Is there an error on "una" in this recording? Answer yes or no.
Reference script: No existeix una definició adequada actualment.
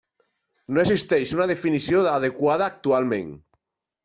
no